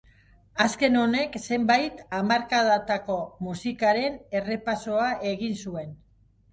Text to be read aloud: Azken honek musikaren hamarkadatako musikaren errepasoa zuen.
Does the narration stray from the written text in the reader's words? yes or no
yes